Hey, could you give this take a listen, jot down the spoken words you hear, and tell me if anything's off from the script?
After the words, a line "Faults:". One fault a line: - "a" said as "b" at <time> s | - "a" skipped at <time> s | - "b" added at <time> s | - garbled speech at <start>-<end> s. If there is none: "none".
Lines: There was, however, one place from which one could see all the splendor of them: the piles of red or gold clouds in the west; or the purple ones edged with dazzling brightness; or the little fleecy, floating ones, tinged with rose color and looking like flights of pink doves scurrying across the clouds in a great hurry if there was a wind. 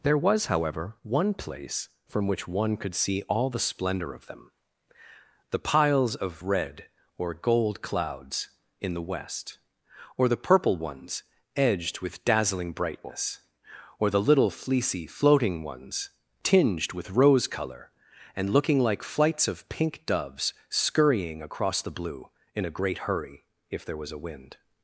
There was, however, one place from which one could see all the splendor of them: the piles of red or gold clouds in the west; or the purple ones edged with dazzling brightness; or the little fleecy, floating ones, tinged with rose color and looking like flights of pink doves scurrying across the blue in a great hurry if there was a wind.
Faults:
- "clouds" said as "blue" at 21.9 s